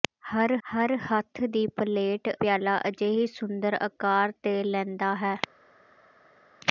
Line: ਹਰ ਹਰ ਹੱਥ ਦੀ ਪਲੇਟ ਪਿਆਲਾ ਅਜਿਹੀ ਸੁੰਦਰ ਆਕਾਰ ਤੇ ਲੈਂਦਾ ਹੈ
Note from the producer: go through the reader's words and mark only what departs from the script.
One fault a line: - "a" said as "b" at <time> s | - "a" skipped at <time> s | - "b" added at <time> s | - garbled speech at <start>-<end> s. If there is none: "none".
none